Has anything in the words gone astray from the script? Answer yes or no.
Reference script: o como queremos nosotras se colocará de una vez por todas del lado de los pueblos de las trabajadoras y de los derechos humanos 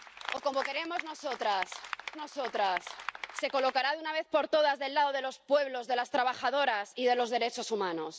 yes